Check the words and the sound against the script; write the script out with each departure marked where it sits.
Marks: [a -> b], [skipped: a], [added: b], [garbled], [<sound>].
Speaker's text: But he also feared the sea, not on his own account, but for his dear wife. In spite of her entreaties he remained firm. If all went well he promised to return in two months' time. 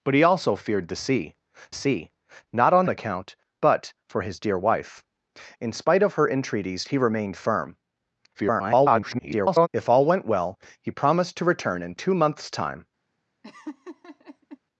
But he also feared the sea, [added: sea] not on [skipped: his own] account, but for his dear wife. In spite of her entreaties he remained firm. [garbled] If all went well he promised to return in two months' time. [laugh]